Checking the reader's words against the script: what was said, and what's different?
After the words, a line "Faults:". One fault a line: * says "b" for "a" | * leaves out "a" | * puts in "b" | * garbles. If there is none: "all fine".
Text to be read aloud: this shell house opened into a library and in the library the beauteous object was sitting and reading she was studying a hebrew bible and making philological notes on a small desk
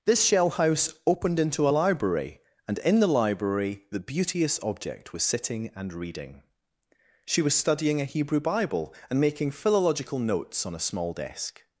this shell house opened into a library and in the library the beauteous object was sitting and reading she was studying a hebrew bible and making philological notes on a small desk
Faults:
all fine